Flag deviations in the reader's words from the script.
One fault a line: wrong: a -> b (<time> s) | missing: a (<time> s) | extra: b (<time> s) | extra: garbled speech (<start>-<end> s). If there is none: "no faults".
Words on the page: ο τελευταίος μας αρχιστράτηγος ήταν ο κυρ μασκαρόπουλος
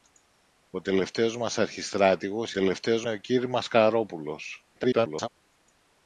wrong: ήταν -> τελευταίος (2.5 s)
extra: garbled speech (4.7-5.3 s)